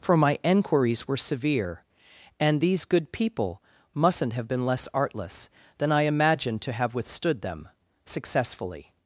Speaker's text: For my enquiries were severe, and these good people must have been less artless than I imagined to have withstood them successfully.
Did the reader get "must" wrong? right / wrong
wrong